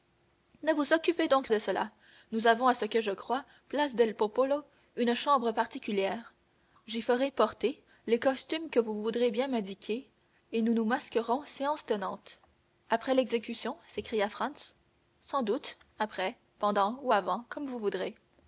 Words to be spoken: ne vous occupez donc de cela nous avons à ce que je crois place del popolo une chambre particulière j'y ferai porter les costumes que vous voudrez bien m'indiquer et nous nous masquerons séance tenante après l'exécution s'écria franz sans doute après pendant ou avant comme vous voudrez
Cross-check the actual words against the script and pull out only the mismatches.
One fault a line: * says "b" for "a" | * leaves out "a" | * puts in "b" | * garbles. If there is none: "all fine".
all fine